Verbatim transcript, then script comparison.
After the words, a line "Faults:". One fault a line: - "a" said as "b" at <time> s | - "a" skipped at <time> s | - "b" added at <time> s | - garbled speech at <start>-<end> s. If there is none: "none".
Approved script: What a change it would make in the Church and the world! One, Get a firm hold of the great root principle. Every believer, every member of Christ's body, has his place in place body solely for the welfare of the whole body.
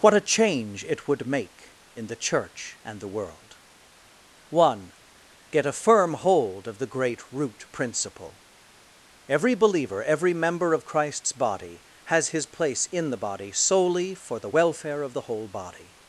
What a change it would make in the Church and the world! One, Get a firm hold of the great root principle. Every believer, every member of Christ's body, has his place in the body solely for the welfare of the whole body.
Faults:
- "place" said as "the" at 13.1 s